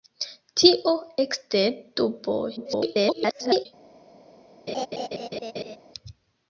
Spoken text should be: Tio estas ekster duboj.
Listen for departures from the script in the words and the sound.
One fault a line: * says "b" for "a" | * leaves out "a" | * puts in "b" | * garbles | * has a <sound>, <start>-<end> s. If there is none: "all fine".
* leaves out "estas"
* garbles
* has a laugh, 4.7-5.8 s